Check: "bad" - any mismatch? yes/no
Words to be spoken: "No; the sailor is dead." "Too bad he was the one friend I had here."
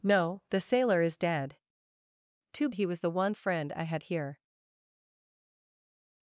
yes